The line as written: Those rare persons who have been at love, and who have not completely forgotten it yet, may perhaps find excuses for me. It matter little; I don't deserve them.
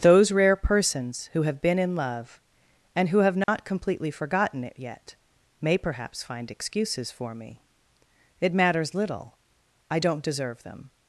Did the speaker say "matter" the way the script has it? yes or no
no